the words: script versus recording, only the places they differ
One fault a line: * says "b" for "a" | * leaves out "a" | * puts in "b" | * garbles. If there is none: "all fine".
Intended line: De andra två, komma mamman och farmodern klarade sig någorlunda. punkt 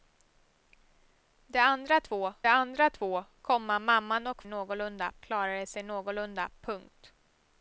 * puts in "andra två"
* says "någorlunda" for "farmodern"